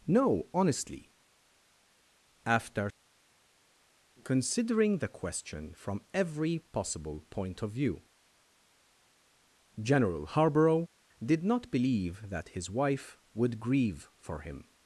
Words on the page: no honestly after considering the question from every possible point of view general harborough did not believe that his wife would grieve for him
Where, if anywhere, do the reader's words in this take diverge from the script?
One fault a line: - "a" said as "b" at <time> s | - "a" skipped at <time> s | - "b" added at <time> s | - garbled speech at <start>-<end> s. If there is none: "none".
none